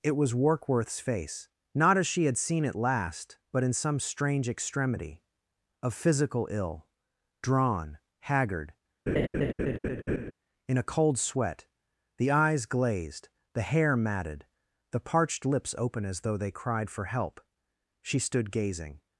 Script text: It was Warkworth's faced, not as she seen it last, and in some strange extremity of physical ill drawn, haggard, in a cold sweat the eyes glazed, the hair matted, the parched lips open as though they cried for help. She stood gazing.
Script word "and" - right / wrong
wrong